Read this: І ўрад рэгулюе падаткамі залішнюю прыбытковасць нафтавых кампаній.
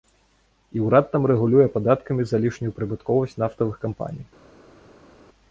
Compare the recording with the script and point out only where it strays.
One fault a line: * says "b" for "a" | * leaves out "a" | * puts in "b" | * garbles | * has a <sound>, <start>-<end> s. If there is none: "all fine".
* puts in "там"